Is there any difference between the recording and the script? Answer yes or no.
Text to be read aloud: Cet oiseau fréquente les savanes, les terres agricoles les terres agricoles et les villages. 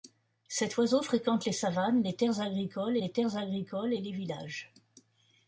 no